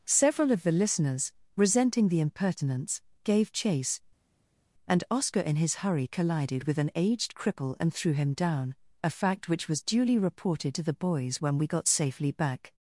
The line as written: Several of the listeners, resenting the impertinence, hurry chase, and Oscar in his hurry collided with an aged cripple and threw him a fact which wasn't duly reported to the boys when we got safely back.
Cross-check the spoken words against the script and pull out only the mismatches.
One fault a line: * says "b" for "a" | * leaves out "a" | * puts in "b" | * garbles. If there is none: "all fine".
* says "gave" for "hurry"
* puts in "down"
* says "was" for "wasn't"